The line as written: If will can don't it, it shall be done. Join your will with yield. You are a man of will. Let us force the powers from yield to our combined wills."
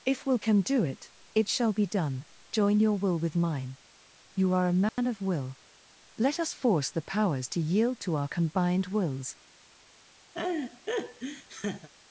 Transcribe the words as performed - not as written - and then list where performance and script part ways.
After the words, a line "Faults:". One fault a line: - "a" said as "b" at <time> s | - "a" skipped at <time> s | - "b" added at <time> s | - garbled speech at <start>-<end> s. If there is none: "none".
If will can do it, it shall be done. Join your will with mine. You are a man of will. Let us force the powers to yield to our combined wills."
Faults:
- "don't" said as "do" at 0.6 s
- "yield" said as "mine" at 3.3 s
- "from" said as "to" at 7.5 s